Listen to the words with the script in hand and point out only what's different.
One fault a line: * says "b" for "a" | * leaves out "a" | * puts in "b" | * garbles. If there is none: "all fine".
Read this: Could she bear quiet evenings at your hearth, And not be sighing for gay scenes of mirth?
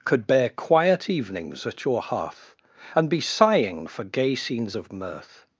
* leaves out "she"
* leaves out "not"